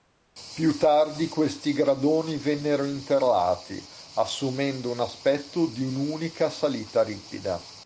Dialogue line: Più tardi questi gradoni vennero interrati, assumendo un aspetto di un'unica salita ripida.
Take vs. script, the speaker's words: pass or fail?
pass